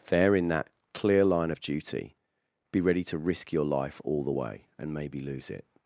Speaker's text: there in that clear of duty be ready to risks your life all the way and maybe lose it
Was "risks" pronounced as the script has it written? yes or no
no